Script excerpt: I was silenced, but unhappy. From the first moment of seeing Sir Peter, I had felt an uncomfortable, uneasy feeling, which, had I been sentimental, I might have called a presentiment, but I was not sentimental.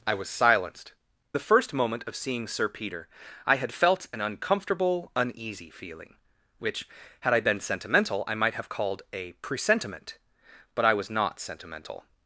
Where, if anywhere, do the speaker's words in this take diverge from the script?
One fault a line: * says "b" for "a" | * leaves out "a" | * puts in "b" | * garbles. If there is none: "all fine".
* leaves out "but unhappy From"